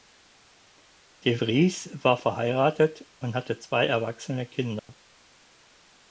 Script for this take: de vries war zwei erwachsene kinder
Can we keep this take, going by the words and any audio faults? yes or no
no